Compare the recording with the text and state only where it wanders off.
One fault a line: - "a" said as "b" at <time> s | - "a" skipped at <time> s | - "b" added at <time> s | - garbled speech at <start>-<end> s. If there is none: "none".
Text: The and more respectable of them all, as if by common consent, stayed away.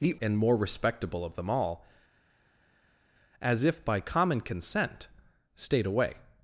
none